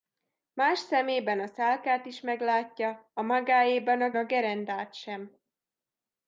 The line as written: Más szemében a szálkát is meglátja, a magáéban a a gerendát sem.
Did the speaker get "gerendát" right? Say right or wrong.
right